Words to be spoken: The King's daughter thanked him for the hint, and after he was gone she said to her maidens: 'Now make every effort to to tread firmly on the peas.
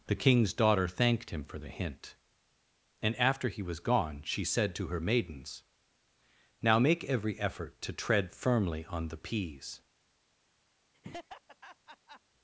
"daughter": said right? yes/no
yes